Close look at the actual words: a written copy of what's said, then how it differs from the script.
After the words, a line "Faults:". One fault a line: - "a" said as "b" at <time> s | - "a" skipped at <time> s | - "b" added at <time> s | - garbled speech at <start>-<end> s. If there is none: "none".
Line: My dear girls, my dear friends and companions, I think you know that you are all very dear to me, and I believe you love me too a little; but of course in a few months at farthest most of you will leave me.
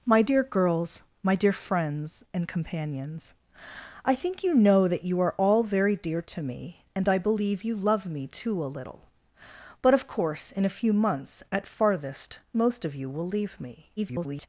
My dear girls, my dear friends and companions, I think you know that you are all very dear to me, and I believe you love me too a little; but of course in a few months at farthest most of you will leave me. [garbled]
Faults:
- garbled speech at 14.0-14.5 s